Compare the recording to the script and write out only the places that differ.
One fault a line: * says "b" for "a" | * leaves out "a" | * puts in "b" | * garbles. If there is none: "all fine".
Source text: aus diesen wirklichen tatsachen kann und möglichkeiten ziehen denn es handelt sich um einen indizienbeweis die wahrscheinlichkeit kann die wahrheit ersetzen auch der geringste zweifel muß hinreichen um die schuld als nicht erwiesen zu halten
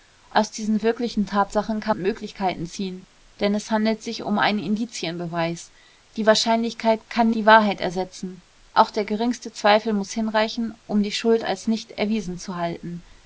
all fine